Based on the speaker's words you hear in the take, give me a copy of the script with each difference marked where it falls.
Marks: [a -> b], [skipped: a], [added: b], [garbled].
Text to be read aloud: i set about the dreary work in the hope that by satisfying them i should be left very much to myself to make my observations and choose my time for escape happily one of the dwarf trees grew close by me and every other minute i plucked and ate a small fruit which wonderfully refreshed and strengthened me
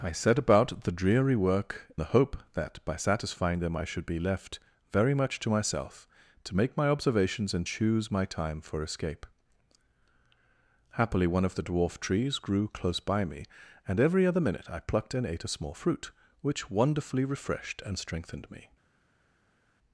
i set about the dreary work [skipped: in] the hope that by satisfying them i should be left very much to myself to make my observations and choose my time for escape happily one of the dwarf trees grew close by me and every other minute i plucked and ate a small fruit which wonderfully refreshed and strengthened me